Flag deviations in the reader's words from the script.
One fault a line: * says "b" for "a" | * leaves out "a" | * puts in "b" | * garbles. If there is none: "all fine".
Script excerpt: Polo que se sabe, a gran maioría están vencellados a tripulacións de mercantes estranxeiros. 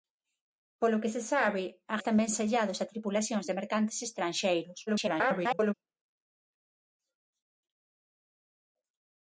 * leaves out "gran maioría"
* garbles